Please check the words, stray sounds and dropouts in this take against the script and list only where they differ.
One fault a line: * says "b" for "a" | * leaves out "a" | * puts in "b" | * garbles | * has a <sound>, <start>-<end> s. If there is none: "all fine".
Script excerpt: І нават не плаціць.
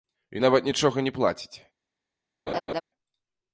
* puts in "нічога"
* has a laugh, 2.5-2.8 s